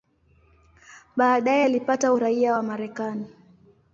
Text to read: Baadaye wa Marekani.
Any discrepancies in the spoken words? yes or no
yes